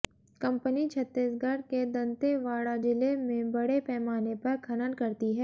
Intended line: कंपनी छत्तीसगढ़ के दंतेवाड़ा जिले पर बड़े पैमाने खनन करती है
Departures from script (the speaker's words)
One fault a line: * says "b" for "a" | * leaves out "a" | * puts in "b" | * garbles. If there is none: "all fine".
* says "में" for "पर"
* puts in "पर"